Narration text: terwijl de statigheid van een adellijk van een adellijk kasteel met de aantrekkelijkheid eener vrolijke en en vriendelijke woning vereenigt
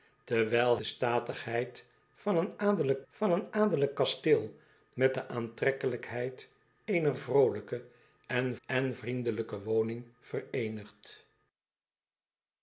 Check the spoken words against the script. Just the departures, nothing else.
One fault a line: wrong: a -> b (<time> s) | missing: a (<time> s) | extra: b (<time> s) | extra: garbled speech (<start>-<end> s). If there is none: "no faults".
no faults